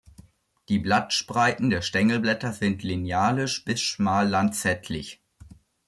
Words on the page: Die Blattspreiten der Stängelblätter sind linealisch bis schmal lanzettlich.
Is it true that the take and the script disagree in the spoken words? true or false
false